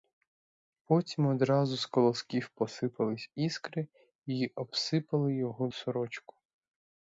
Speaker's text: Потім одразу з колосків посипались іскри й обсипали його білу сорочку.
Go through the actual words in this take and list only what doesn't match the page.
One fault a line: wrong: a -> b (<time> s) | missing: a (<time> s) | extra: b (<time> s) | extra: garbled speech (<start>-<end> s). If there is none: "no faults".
missing: білу (5.7 s)